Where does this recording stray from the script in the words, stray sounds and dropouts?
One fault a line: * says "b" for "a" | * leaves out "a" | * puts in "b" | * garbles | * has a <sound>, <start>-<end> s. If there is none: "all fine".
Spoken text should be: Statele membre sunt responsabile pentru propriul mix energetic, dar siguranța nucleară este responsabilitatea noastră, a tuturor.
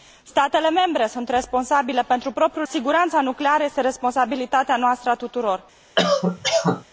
* leaves out "mix energetic dar"
* has a cough, 6.0-6.8 s